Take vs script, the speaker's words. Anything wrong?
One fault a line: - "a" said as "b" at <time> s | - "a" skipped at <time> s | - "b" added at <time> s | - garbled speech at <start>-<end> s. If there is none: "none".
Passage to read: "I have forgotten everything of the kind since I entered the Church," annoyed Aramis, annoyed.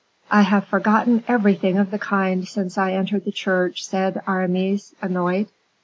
- "annoyed" said as "said" at 3.9 s